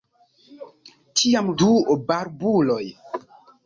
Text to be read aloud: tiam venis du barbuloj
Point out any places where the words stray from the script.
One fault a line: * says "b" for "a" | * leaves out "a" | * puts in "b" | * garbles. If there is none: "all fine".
* leaves out "venis"